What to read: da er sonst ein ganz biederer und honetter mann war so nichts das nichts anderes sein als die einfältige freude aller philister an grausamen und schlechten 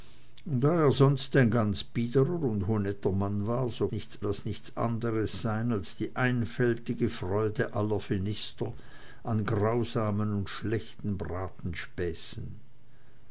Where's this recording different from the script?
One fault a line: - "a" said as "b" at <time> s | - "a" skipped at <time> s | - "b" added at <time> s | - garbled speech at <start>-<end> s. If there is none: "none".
none